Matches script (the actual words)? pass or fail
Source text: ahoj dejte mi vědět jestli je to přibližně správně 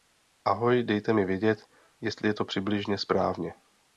pass